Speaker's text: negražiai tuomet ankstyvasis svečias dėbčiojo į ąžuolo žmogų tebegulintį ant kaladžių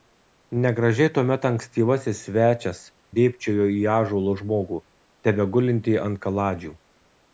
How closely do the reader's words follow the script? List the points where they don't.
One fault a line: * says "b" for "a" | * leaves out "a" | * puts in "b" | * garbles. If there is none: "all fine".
all fine